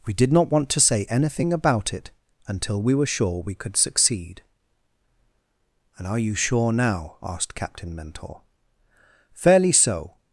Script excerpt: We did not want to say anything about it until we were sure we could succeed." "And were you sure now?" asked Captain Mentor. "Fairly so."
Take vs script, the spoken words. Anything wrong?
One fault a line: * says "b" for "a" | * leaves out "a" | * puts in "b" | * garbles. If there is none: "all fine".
* says "are" for "were"